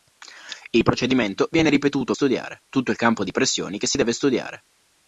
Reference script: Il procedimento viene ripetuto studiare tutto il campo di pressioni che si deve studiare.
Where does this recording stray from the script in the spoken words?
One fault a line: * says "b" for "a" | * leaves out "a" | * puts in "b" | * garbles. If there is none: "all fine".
all fine